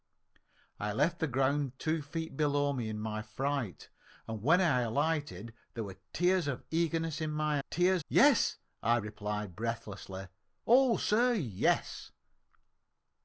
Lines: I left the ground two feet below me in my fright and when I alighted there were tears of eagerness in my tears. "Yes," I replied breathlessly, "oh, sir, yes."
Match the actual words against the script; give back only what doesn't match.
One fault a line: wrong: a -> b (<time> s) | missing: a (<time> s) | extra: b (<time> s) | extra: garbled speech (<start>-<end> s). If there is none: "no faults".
no faults